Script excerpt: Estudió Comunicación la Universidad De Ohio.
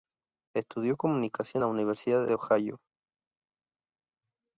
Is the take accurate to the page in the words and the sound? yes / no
yes